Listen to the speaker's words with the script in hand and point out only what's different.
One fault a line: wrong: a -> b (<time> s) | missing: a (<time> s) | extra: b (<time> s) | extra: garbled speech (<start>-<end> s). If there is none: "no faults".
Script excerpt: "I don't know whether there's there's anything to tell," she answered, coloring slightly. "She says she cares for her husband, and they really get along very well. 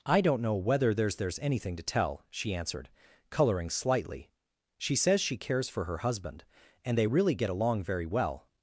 no faults